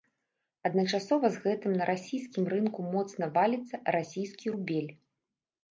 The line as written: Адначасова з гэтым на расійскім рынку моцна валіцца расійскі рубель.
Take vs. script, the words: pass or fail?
pass